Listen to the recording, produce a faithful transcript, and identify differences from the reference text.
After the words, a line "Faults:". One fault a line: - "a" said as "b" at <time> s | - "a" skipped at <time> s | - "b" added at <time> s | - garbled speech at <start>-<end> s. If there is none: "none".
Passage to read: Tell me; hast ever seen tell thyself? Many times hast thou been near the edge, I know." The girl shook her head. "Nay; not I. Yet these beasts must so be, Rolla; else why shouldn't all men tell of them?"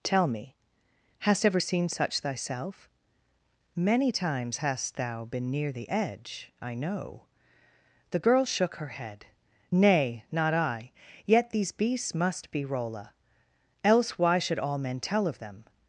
Tell me; hast ever seen such thyself? Many times hast thou been near the edge, I know." The girl shook her head. "Nay; not I. Yet these beasts must be, Rolla; else why should all men tell of them?"
Faults:
- "tell" said as "such" at 1.9 s
- "so" skipped at 12.5 s
- "shouldn't" said as "should" at 14.4 s